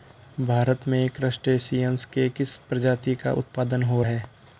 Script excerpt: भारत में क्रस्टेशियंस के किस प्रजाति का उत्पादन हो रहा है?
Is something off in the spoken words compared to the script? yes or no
yes